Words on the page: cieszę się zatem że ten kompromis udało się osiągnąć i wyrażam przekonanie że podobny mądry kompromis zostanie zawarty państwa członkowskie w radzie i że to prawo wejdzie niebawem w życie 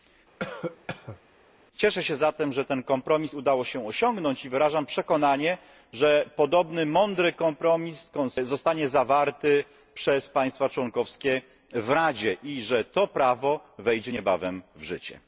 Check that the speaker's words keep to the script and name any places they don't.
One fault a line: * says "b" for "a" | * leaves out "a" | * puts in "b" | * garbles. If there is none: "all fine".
* puts in "przez"